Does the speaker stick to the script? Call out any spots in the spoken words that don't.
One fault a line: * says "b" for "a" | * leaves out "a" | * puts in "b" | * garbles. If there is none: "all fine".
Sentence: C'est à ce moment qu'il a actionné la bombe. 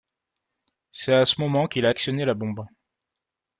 all fine